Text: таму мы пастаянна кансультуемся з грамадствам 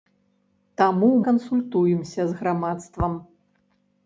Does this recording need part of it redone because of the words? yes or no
yes